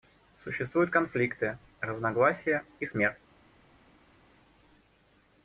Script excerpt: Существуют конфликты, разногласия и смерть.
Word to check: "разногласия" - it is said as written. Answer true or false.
true